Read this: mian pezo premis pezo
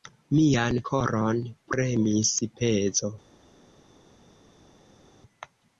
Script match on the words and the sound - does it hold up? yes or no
no